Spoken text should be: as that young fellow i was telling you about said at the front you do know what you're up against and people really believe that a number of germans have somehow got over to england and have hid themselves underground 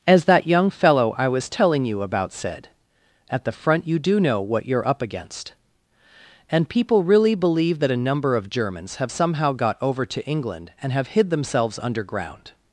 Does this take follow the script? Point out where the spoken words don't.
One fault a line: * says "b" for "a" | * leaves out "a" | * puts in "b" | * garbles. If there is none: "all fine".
all fine